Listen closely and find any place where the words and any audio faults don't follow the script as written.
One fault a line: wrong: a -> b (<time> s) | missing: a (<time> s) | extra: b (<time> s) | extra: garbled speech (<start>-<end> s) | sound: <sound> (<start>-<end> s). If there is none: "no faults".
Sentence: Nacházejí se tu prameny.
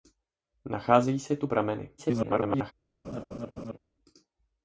extra: garbled speech (2.0-2.7 s)
sound: laugh (3.0-3.8 s)